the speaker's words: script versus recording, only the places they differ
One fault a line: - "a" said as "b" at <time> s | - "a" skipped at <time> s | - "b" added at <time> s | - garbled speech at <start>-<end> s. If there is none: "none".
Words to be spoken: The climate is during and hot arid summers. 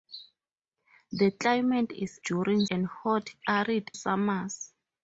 none